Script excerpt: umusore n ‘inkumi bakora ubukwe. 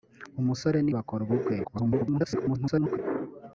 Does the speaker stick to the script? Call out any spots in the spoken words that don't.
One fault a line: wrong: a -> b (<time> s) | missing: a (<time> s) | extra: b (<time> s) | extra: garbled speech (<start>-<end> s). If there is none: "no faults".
missing: inkumi (0.9 s)
extra: garbled speech (1.6-3.0 s)